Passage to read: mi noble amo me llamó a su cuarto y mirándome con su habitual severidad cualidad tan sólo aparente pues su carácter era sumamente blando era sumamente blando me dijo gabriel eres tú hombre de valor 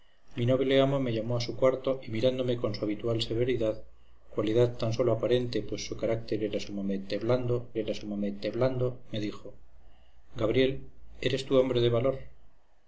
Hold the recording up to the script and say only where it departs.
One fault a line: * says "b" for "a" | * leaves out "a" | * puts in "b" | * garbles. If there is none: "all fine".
all fine